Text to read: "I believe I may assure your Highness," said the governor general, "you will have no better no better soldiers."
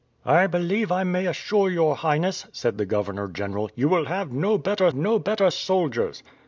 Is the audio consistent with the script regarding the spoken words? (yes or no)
yes